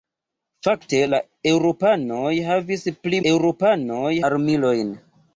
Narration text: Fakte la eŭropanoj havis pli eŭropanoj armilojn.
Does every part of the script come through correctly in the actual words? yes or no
yes